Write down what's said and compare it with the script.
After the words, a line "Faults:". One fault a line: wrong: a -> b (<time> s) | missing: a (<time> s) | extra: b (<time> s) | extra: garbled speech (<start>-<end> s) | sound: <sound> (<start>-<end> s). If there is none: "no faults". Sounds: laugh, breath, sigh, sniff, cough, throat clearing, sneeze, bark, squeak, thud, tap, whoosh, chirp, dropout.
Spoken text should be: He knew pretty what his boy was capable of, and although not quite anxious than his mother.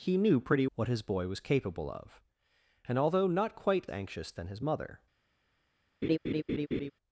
He knew pretty what his boy was capable of, and although not quite anxious than his mother.
Faults:
sound: laugh (6.0-6.9 s)